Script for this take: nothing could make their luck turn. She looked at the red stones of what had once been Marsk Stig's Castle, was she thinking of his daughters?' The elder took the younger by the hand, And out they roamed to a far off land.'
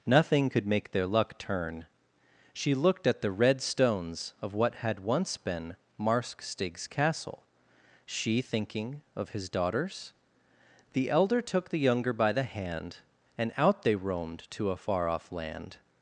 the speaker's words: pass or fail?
fail